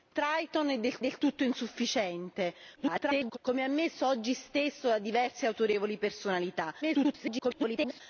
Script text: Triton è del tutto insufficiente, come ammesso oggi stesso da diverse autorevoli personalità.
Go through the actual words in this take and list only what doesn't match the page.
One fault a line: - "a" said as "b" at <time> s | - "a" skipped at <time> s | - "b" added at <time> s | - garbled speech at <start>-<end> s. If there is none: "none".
- "del" added at 1.0 s
- garbled speech at 2.8-3.4 s
- garbled speech at 6.8-8.0 s